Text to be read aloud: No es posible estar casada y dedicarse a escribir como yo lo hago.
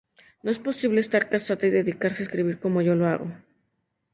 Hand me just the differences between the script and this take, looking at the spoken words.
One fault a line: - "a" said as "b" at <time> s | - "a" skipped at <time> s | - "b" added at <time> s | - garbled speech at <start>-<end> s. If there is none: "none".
none